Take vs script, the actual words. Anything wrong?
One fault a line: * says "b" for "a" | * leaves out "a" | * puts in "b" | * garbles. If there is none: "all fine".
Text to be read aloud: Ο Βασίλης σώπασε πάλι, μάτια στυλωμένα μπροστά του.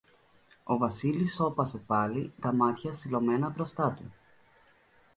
* puts in "τα"